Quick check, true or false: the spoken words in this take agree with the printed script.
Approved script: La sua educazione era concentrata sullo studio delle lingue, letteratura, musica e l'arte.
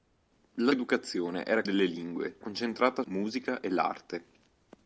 false